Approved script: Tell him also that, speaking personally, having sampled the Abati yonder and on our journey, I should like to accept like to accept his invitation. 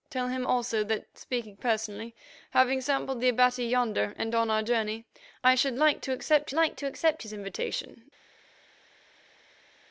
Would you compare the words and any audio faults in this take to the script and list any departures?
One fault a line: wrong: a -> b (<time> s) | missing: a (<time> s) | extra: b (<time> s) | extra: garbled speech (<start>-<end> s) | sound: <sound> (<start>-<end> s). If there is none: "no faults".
no faults